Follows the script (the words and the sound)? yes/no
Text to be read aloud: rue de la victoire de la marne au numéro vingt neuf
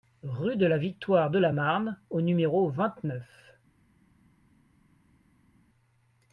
yes